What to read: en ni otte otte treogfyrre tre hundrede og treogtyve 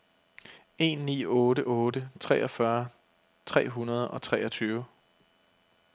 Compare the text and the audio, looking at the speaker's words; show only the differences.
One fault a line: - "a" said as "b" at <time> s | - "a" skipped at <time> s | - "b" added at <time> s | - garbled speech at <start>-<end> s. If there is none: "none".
none